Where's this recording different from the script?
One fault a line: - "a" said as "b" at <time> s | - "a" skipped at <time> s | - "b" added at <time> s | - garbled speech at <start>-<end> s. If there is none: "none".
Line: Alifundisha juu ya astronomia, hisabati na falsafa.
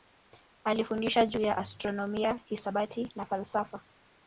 none